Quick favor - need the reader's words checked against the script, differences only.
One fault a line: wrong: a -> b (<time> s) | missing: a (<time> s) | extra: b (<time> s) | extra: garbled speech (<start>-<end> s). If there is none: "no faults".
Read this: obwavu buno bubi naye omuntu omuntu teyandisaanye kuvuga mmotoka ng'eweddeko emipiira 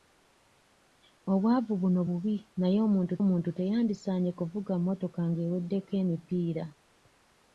no faults